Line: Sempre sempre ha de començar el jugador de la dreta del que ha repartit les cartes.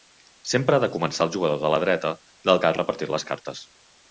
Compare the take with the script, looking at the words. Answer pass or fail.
fail